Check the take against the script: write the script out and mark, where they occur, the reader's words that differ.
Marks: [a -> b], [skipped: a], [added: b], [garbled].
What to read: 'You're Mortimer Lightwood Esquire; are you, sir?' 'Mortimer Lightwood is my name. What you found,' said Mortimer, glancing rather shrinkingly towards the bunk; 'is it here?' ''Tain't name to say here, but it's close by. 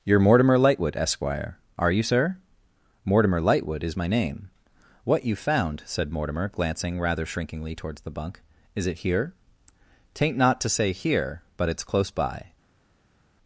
'You're Mortimer Lightwood Esquire; are you, sir?' 'Mortimer Lightwood is my name. What you found,' said Mortimer, glancing rather shrinkingly towards the bunk; 'is it here?' ''Tain't [name -> not] to say here, but it's close by.